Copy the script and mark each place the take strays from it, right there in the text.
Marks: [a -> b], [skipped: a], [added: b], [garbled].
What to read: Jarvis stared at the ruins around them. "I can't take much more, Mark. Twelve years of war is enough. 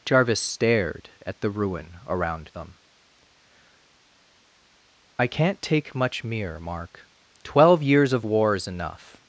Jarvis stared at the [ruins -> ruin] around them. "I can't take much [more, -> mere] Mark. Twelve years of war is enough.